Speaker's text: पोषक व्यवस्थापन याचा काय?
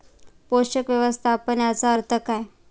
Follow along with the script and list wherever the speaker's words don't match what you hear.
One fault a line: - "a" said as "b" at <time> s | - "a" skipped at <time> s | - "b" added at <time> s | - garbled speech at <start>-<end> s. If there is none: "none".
- "अर्थ" added at 1.9 s